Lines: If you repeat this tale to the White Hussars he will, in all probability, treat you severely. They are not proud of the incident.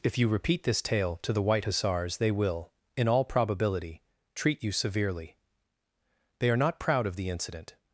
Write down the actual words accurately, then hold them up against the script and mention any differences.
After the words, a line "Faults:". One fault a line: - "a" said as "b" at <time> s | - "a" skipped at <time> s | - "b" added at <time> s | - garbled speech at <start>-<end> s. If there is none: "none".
If you repeat this tale to the White Hussars they will, in all probability, treat you severely. They are not proud of the incident.
Faults:
- "he" said as "they" at 2.2 s